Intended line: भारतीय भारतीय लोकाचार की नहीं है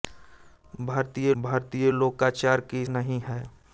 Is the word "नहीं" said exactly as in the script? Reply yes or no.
yes